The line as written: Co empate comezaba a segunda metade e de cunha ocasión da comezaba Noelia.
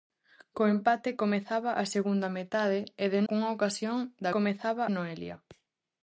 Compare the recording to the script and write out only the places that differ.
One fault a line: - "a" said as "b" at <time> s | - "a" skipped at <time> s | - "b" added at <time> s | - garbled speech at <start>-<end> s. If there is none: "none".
none